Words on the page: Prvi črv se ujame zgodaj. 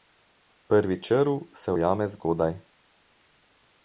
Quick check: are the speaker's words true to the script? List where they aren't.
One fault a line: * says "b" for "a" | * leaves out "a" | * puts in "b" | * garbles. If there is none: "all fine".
all fine